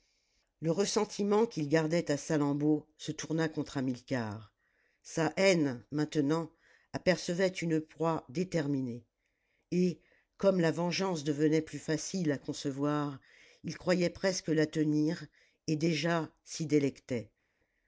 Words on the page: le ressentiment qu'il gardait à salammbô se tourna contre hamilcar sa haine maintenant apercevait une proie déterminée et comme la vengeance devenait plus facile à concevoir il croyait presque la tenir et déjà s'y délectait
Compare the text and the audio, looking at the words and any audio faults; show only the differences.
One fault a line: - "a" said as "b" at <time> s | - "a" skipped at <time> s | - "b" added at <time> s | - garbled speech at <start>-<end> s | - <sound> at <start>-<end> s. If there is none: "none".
none